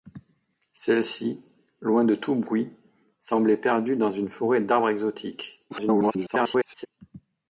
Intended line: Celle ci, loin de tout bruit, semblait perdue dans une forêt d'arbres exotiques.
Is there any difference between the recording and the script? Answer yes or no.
yes